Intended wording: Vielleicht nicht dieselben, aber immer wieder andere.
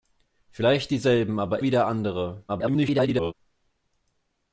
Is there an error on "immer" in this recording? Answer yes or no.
yes